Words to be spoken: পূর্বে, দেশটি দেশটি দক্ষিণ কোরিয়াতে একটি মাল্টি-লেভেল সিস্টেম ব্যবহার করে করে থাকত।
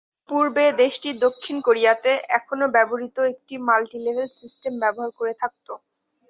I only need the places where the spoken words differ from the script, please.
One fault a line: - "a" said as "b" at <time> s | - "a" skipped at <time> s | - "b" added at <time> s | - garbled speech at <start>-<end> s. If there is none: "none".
- "দেশটি" skipped at 1.1 s
- "এখনও ব্যবহৃত" added at 2.4 s
- "করে" skipped at 5.3 s